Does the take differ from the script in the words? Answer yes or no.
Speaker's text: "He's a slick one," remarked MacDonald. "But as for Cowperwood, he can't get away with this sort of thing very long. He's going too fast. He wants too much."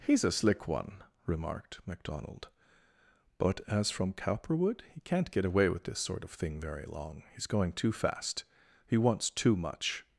yes